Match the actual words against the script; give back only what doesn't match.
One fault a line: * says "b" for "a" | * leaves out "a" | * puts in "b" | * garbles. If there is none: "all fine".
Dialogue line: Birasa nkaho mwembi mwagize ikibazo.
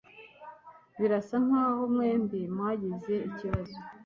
all fine